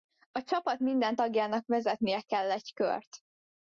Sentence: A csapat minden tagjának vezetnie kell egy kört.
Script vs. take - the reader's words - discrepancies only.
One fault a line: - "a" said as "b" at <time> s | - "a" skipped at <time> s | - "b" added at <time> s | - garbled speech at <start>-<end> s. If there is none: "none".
none